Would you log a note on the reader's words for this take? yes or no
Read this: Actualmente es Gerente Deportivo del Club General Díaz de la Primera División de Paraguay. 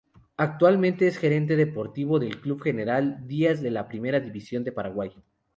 no